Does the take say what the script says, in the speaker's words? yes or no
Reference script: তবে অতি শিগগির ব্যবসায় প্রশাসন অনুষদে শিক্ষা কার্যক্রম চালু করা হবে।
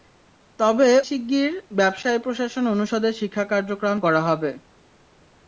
no